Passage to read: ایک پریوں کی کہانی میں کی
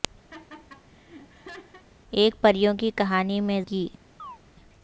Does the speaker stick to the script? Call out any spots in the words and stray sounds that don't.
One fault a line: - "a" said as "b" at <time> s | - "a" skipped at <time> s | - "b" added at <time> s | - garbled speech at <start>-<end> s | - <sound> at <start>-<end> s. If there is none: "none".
- laugh at 0.3-1.8 s
- chirp at 4.2-4.4 s